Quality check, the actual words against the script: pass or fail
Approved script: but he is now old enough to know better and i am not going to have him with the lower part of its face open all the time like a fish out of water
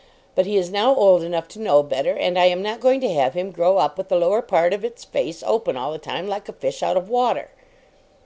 fail